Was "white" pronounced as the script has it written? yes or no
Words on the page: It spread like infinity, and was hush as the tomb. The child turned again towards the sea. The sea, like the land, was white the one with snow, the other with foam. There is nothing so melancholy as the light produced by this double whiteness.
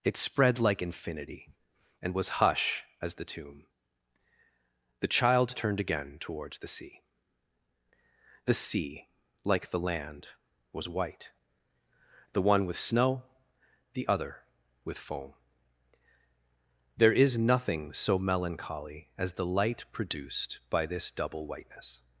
yes